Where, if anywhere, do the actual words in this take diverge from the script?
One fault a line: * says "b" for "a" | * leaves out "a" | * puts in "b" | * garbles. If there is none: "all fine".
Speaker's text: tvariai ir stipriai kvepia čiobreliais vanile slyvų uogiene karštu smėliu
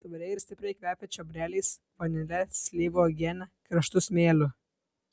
all fine